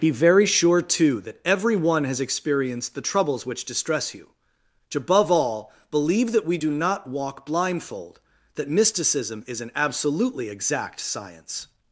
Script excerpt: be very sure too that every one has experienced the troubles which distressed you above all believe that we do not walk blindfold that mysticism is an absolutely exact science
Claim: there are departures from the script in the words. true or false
true